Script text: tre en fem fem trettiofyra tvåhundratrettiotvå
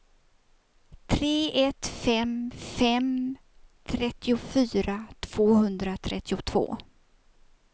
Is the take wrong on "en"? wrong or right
wrong